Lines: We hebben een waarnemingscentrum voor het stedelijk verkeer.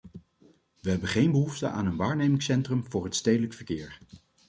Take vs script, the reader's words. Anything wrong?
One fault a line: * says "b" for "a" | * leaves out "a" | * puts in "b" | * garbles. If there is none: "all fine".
* puts in "geen behoefte aan"